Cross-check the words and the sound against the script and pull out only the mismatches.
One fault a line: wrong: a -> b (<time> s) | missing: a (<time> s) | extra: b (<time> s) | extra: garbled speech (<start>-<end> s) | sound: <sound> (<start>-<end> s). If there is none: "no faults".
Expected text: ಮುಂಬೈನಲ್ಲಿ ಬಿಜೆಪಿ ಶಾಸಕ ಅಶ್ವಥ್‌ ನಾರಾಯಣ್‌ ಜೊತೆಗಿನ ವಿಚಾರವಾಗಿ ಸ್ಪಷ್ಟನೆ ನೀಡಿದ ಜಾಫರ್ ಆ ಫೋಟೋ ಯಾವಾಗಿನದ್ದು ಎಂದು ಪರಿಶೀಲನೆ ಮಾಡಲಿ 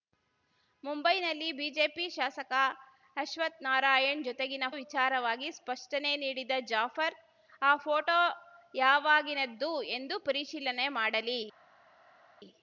no faults